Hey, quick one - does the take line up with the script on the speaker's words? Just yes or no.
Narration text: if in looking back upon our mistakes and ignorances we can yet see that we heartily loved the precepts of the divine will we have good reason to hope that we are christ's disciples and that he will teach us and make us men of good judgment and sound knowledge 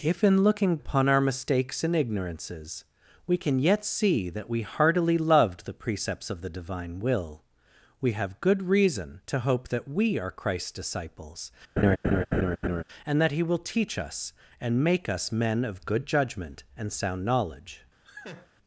no